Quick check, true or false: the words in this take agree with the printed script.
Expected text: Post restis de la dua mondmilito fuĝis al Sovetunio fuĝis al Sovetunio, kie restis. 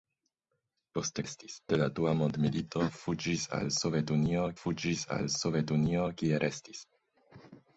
true